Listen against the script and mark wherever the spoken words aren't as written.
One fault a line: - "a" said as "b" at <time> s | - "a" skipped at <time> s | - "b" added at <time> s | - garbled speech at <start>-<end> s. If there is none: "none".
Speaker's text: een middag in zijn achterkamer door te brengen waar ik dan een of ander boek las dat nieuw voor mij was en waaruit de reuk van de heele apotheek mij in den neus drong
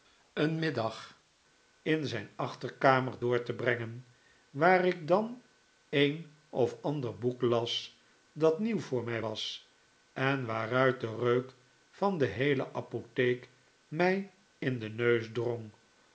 none